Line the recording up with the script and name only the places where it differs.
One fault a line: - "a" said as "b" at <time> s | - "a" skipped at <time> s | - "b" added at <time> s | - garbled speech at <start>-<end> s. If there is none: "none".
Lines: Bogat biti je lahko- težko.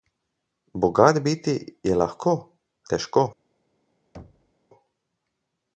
none